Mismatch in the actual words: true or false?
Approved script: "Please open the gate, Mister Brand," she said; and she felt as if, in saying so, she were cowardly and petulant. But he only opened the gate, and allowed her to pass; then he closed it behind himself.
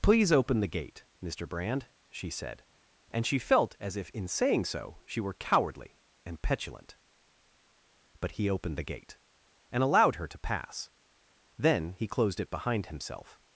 true